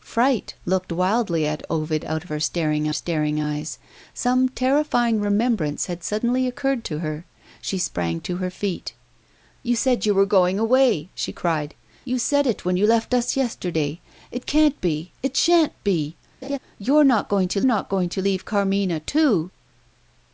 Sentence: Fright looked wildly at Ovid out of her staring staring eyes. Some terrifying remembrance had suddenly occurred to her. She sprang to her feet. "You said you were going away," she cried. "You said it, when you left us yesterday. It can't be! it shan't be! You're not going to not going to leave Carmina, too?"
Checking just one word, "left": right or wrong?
right